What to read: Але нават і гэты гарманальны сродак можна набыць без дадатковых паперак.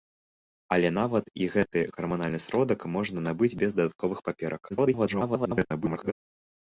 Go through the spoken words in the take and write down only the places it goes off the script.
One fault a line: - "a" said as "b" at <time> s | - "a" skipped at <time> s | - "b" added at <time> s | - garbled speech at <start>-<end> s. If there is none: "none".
- garbled speech at 4.7-6.1 s